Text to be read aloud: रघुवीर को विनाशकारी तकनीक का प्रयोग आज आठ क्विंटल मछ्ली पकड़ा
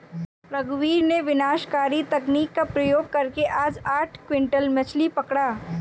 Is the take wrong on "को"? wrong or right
wrong